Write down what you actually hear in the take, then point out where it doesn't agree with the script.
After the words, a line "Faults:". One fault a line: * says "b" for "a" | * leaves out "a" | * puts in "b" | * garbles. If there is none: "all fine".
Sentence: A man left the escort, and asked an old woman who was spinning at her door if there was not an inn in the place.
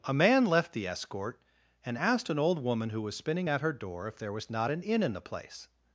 A man left the escort, and asked an old woman who was spinning at her door if there was not an inn in the place.
Faults:
all fine